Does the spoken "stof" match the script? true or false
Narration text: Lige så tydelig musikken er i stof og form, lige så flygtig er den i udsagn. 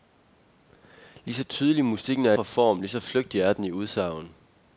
false